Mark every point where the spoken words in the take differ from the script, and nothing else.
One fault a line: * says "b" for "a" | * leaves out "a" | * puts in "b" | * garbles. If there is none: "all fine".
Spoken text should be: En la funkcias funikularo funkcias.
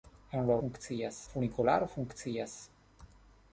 all fine